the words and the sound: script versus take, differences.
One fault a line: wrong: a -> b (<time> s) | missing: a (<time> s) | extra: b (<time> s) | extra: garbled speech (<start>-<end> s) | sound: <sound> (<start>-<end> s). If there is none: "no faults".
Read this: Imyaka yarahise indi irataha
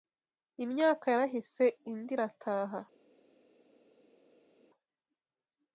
no faults